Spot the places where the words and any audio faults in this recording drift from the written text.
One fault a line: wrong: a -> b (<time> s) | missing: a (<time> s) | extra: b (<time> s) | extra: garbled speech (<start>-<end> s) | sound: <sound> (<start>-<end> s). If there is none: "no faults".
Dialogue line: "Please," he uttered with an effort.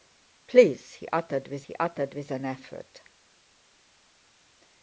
extra: he uttered with (1.6 s)